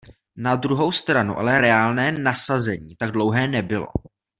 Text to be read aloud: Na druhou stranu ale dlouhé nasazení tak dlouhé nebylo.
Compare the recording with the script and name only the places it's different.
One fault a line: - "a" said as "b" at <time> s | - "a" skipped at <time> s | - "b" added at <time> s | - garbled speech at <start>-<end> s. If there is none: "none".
- "dlouhé" said as "reálné" at 1.6 s